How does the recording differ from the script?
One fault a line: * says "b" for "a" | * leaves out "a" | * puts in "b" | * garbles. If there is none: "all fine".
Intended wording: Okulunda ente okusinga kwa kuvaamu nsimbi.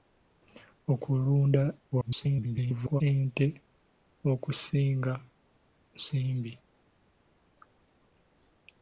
* garbles
* leaves out "kwa kuvaamu"